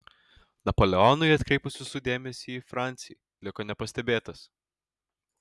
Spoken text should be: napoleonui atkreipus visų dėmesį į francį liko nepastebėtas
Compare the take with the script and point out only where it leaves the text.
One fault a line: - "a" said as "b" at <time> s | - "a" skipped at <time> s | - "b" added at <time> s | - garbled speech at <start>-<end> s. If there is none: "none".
none